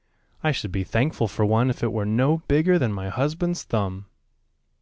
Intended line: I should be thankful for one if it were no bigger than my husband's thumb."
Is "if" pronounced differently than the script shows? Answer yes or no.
no